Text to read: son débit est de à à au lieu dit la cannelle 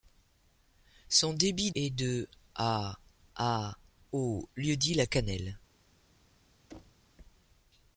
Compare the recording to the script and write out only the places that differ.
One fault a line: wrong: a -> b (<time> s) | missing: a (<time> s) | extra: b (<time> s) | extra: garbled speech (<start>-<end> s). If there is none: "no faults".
no faults